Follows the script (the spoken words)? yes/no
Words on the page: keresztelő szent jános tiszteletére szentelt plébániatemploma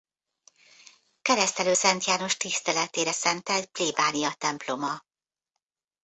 yes